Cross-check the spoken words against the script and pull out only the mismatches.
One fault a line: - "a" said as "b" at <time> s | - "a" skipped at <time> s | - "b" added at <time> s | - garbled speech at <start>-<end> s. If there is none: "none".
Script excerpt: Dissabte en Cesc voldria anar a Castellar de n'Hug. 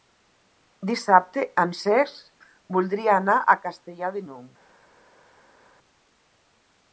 none